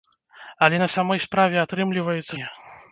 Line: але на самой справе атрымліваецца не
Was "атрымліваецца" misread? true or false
false